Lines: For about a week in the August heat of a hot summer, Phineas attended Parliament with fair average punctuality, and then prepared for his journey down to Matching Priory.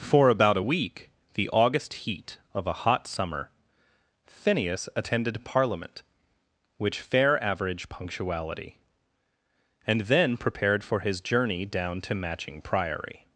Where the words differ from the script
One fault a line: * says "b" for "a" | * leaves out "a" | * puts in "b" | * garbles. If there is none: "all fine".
* leaves out "in"
* says "which" for "with"